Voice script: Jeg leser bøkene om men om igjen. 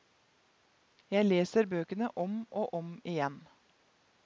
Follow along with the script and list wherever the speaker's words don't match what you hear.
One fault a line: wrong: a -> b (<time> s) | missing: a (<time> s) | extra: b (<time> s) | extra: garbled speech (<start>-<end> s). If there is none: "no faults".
wrong: men -> og (2.5 s)